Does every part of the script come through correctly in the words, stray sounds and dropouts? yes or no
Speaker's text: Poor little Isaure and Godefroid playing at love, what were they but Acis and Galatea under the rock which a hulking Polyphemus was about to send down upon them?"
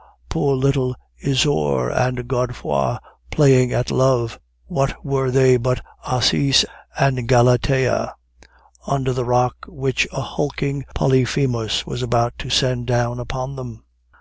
yes